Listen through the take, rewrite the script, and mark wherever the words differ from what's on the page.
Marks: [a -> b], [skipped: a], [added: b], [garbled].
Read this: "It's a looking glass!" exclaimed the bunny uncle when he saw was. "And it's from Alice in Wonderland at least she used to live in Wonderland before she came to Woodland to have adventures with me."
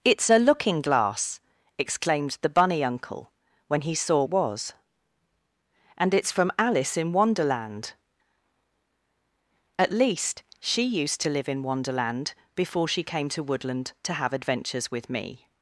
"It's a looking glass!" exclaimed the bunny uncle when he saw was. "And it's from Alice in Wonderland at least she used to live in Wonderland before she came to Woodland to have adventures with me."